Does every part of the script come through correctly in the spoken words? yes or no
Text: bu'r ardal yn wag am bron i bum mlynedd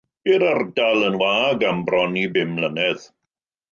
yes